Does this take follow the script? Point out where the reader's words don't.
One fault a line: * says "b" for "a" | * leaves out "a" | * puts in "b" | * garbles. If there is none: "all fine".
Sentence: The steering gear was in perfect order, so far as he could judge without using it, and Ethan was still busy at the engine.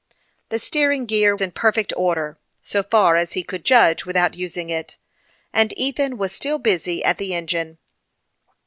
* leaves out "was"